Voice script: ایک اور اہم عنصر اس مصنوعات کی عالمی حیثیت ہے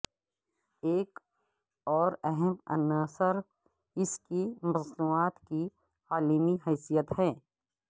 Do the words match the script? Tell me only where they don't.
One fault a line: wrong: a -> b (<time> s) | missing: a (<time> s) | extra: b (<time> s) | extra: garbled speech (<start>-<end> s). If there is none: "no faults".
extra: کی (4.2 s)